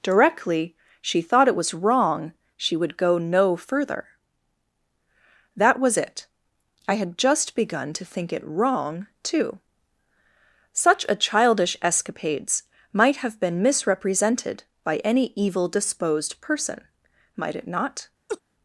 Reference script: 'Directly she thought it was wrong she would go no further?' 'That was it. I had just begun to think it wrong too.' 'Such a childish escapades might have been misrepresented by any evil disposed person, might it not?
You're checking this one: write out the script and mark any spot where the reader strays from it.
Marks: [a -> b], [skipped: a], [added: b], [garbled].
'Directly she thought it was wrong she would go no further?' 'That was it. I had just begun to think it wrong too.' 'Such a childish escapades might have been misrepresented by any evil disposed person, might it not?